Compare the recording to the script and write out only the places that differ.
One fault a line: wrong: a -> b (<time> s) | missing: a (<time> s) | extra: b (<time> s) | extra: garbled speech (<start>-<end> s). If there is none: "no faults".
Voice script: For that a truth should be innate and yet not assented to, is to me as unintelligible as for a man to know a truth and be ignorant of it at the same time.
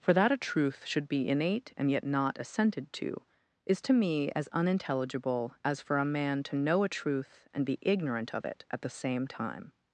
no faults